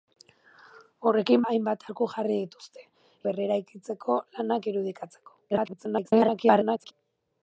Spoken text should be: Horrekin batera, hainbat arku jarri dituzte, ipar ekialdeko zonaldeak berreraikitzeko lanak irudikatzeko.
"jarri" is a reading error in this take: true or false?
false